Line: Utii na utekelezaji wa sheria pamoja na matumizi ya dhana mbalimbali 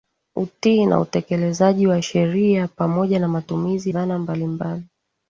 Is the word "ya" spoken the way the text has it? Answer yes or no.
no